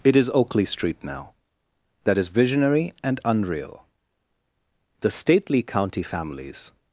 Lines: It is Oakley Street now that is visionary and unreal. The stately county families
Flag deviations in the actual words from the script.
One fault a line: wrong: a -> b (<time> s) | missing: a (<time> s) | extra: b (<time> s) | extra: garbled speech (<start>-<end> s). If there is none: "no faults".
no faults